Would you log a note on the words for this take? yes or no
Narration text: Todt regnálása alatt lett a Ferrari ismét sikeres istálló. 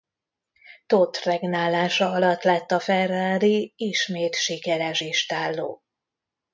no